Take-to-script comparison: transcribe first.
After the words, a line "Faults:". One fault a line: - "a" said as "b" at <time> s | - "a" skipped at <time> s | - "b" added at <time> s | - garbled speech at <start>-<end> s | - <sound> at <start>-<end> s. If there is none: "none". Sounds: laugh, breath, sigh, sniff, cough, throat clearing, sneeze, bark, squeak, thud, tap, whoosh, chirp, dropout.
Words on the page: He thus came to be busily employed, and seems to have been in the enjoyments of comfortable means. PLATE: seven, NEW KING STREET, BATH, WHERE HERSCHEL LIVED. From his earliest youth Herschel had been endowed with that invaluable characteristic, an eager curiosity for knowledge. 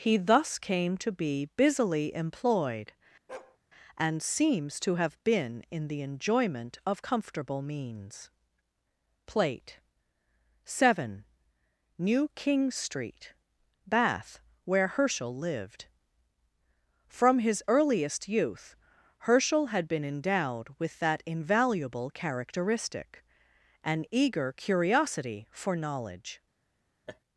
He thus came to be busily employed, and seems to have been in the enjoyment of comfortable means. PLATE: seven, NEW KING STREET, BATH, WHERE HERSCHEL LIVED. From his earliest youth Herschel had been endowed with that invaluable characteristic, an eager curiosity for knowledge.
Faults:
- bark at 3.3-3.6 s
- "enjoyments" said as "enjoyment" at 6.0 s
- laugh at 27.1-27.2 s